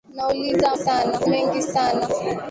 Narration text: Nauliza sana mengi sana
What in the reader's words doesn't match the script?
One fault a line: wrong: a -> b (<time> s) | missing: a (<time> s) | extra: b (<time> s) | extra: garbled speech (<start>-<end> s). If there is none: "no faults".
no faults